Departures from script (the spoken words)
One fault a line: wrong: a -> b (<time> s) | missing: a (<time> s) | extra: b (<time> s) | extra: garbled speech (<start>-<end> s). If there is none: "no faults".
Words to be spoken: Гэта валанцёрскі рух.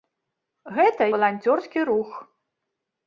no faults